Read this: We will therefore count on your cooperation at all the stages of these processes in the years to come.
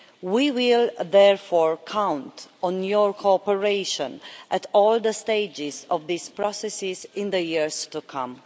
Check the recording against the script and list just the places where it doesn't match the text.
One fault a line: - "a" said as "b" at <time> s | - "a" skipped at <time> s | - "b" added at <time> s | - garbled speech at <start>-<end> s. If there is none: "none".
none